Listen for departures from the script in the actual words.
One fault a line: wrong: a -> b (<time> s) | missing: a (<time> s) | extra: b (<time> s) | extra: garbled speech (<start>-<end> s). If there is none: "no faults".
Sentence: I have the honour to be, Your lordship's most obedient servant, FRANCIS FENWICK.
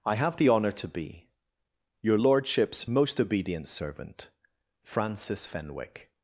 no faults